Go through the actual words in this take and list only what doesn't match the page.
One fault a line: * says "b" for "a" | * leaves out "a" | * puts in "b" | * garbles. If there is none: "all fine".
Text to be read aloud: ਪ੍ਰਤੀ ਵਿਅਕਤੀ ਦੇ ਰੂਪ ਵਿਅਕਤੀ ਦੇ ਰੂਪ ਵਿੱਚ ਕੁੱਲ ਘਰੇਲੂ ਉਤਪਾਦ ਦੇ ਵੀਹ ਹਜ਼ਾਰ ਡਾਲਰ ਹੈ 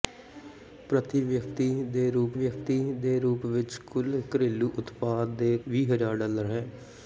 all fine